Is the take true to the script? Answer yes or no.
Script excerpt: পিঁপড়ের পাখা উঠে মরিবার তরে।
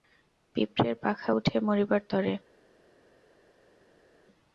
yes